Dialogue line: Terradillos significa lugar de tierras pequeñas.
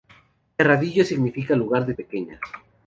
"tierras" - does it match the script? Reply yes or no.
no